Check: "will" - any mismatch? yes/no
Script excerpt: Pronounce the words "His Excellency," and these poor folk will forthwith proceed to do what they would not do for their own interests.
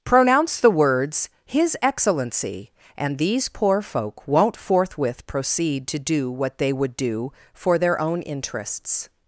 yes